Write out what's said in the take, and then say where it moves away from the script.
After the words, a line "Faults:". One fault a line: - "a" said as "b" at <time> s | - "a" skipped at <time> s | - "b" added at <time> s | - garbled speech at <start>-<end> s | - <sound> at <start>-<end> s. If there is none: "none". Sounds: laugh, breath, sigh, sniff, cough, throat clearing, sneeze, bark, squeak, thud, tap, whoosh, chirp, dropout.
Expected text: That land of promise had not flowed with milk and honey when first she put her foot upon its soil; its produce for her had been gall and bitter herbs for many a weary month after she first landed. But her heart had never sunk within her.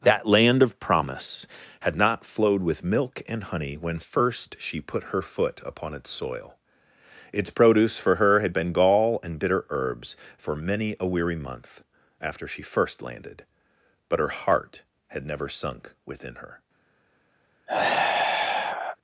That land of promise had not flowed with milk and honey when first she put her foot upon its soil; its produce for her had been gall and bitter herbs for many a weary month after she first landed. But her heart had never sunk within her.
Faults:
- sigh at 17.7-19.0 s